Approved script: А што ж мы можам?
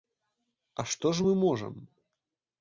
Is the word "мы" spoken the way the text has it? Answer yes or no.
yes